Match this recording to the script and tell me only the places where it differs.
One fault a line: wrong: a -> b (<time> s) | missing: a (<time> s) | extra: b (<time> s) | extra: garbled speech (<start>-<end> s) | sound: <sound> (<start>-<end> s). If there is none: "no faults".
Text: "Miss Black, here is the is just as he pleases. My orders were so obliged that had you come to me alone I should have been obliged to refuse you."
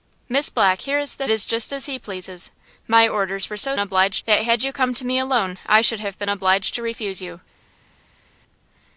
no faults